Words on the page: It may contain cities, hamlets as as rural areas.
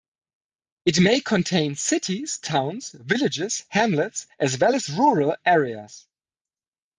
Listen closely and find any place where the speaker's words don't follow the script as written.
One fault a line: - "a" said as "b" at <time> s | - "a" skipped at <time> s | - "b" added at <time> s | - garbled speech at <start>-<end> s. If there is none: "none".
- "towns villages" added at 2.4 s
- "well" added at 4.6 s